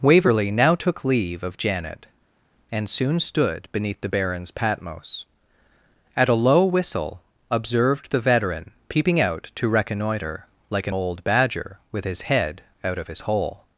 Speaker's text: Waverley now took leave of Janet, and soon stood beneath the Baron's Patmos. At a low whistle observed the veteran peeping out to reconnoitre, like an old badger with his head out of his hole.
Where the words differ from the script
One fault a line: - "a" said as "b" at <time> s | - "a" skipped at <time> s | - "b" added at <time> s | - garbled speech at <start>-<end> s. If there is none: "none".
none